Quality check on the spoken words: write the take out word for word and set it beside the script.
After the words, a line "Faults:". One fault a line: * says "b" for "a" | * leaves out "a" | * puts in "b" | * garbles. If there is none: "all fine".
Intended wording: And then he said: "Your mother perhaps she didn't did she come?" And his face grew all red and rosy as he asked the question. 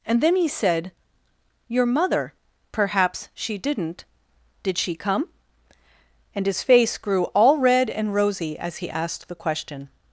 And then he said: "Your mother perhaps she didn't did she come?" And his face grew all red and rosy as he asked the question.
Faults:
all fine